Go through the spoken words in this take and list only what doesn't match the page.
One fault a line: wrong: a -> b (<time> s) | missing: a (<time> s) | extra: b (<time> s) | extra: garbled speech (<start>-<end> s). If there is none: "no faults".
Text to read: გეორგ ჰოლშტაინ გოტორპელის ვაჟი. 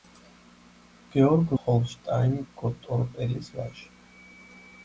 no faults